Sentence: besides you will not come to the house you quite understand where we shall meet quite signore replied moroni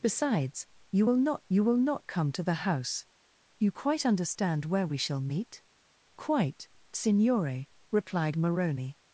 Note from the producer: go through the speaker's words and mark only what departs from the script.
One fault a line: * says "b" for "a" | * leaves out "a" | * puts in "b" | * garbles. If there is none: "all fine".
* puts in "you will not"